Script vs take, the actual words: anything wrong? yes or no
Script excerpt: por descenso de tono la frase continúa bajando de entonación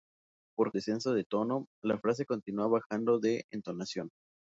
no